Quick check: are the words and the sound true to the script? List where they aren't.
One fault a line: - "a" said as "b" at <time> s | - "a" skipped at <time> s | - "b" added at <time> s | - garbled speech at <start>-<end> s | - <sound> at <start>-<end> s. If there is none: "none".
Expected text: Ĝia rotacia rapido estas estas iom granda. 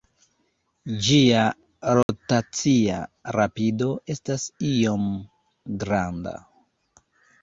- dropout at 2.0-2.1 s
- "estas" skipped at 4.5 s